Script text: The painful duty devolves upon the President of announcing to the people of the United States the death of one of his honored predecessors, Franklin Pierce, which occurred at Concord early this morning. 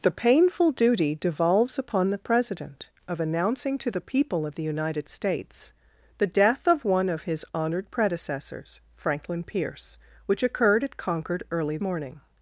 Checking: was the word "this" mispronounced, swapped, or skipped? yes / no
yes